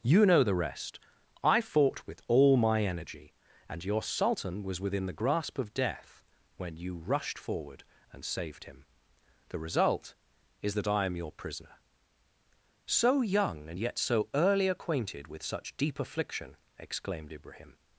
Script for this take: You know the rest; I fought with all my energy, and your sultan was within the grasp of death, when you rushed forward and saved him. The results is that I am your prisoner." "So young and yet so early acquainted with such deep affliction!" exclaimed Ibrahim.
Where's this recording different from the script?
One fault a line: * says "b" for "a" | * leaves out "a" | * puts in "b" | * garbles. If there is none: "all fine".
* says "result" for "results"